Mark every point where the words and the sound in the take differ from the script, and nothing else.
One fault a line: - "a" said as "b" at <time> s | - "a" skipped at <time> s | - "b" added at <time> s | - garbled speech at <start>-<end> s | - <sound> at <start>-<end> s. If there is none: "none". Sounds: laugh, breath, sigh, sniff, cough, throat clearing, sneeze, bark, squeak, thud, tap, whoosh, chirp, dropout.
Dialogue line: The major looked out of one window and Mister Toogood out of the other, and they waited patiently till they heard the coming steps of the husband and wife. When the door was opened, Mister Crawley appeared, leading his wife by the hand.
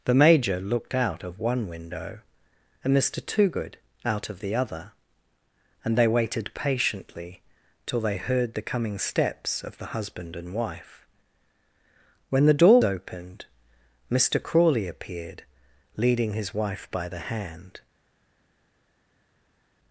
- "was" skipped at 12.8 s